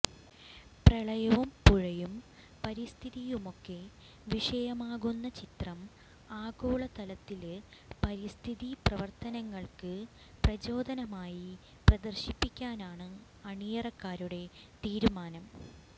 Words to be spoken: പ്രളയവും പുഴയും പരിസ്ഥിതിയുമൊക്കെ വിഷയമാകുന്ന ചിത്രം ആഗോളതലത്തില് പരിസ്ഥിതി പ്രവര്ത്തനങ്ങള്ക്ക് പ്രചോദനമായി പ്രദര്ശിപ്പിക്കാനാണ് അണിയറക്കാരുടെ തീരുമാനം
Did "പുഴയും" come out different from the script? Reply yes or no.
no